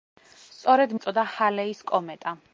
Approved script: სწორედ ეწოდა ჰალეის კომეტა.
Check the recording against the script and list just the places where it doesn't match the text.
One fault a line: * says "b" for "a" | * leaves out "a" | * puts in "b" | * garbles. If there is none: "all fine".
all fine